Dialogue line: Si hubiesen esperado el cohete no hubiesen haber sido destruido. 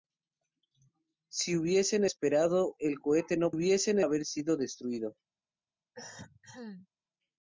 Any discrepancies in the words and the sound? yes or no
yes